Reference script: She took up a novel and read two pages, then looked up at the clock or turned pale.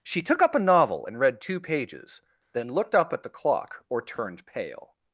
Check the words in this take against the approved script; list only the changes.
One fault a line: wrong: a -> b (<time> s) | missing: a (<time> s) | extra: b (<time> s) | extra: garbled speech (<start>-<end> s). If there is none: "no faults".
no faults